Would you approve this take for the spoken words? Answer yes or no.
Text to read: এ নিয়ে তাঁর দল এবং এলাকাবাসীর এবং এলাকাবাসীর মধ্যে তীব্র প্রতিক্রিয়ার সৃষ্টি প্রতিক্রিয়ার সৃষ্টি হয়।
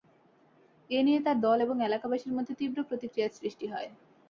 no